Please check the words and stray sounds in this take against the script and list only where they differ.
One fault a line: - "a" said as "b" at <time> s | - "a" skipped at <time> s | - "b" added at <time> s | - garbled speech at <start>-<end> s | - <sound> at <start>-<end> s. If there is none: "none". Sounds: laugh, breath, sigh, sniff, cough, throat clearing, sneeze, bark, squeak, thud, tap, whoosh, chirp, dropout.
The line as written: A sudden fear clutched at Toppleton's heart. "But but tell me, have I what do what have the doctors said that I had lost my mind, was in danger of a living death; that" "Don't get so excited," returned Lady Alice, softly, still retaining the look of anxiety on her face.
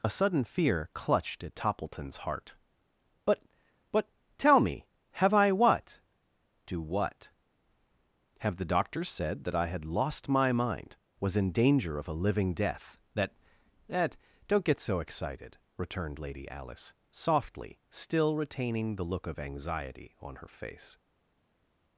- "that" added at 13.9 s